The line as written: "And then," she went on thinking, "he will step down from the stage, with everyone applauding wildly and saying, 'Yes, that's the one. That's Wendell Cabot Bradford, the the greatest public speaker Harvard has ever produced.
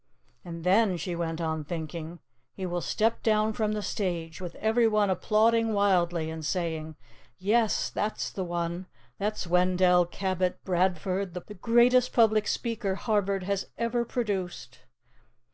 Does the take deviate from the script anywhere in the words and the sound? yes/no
no